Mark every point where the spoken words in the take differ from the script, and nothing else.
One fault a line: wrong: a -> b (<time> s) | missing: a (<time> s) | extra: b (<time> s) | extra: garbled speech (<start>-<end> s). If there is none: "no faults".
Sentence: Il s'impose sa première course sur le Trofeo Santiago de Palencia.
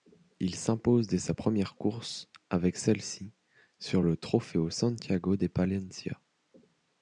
extra: dès (1.1 s)
extra: avec celle ci (2.5 s)